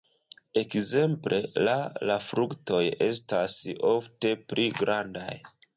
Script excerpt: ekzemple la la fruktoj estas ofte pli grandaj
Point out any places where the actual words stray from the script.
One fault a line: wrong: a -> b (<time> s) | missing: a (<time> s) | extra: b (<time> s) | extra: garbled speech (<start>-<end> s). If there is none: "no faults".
no faults